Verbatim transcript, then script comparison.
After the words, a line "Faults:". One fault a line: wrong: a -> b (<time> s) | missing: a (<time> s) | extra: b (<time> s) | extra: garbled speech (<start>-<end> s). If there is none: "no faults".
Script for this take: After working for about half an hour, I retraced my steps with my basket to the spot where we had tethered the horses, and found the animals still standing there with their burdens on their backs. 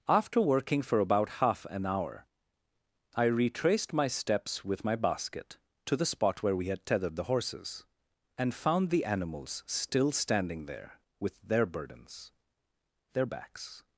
After working for about half an hour, I retraced my steps with my basket to the spot where we had tethered the horses, and found the animals still standing there with their burdens their backs.
Faults:
missing: on (12.3 s)